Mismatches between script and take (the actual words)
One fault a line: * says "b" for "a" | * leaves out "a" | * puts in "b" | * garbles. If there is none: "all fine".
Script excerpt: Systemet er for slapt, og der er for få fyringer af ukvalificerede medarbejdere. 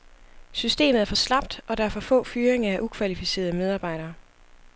all fine